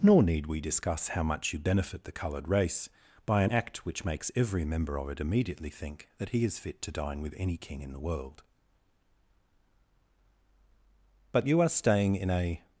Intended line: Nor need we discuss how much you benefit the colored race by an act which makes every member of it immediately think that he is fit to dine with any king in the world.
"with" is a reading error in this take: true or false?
false